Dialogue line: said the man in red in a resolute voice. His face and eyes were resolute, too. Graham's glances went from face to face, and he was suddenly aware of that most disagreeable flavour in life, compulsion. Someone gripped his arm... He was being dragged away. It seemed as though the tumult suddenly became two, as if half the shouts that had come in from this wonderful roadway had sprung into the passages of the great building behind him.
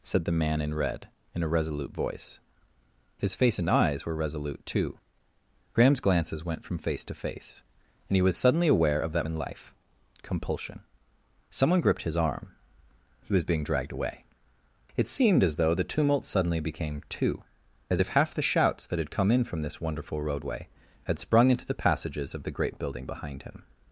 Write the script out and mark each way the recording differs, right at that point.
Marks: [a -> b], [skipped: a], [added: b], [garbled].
said the man in red in a resolute voice. His face and eyes were resolute, too. Graham's glances went from face to face, and he was suddenly aware of that [skipped: most disagreeable flavour] in life, compulsion. Someone gripped his arm... He was being dragged away. It seemed as though the tumult suddenly became two, as if half the shouts that had come in from this wonderful roadway had sprung into the passages of the great building behind him.